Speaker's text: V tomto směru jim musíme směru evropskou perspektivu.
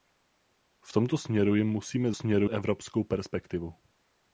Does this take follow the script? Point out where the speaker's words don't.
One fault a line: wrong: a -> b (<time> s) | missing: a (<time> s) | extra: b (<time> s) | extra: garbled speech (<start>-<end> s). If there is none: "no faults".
no faults